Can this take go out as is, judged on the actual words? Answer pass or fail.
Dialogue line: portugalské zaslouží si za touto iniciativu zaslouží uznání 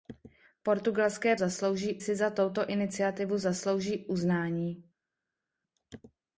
pass